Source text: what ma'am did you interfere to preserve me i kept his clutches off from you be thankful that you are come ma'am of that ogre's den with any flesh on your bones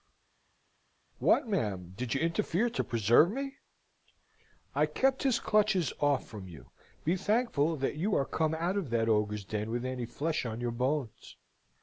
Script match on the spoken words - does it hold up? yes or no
no